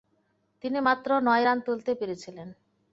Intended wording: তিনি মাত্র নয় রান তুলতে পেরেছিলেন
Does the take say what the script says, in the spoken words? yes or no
yes